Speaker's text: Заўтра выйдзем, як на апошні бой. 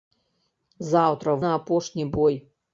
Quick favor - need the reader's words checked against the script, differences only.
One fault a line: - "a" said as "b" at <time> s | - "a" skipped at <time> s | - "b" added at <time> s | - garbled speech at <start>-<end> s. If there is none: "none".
- "выйдзем як" skipped at 1.4 s